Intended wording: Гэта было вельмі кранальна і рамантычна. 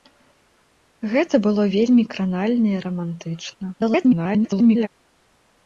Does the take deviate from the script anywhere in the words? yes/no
yes